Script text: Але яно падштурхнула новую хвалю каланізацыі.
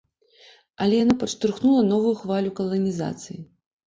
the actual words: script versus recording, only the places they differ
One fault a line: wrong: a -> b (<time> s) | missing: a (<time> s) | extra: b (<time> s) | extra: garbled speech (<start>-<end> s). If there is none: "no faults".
no faults